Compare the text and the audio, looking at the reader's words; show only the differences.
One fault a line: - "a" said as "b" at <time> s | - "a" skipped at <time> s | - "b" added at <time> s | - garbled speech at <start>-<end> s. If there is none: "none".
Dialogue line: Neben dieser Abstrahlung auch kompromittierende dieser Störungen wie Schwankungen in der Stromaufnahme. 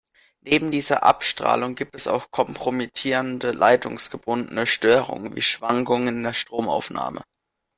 - "gibt es" added at 1.7 s
- "dieser" said as "leitungsgebundene" at 3.5 s